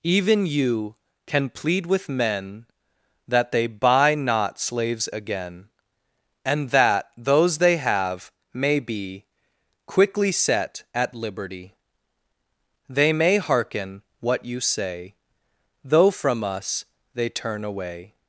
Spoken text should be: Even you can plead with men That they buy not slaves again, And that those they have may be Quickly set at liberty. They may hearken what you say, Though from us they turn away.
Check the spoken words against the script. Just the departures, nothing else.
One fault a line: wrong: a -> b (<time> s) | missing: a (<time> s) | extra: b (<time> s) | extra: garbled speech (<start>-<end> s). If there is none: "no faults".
no faults